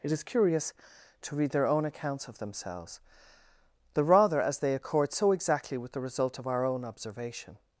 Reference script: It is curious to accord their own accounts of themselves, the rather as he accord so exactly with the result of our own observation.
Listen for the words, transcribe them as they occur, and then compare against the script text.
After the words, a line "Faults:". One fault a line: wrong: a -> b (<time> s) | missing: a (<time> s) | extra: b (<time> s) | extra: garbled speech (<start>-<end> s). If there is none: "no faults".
It is curious to read their own accounts of themselves, the rather as they accord so exactly with the result of our own observation.
Faults:
wrong: accord -> read (1.4 s)
wrong: he -> they (4.6 s)